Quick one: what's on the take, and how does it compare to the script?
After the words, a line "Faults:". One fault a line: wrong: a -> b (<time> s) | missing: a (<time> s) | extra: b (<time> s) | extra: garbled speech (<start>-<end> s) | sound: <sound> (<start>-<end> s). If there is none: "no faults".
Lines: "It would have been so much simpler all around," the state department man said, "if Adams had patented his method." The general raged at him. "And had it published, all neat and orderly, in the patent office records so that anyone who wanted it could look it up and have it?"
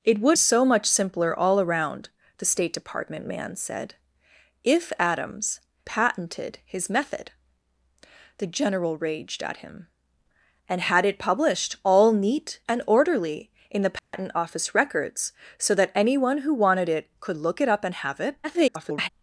"It would so much simpler all around," the state department man said, "if Adams patented his method." The general raged at him. "And had it published, all neat and orderly, in the patent office records so that anyone who wanted it could look it up and have it?" [garbled]
Faults:
missing: have been (0.4 s)
missing: had (5.6 s)
sound: dropout (14.0-14.1 s)
extra: garbled speech (18.4-19.1 s)